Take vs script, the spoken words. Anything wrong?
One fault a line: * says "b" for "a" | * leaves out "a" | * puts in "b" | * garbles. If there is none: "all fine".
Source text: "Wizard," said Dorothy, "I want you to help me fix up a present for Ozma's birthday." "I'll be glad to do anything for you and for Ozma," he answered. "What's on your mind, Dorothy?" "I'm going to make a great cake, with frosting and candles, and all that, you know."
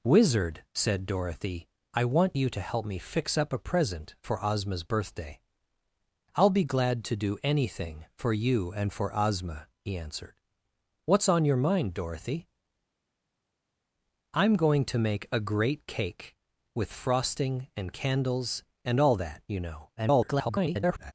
* garbles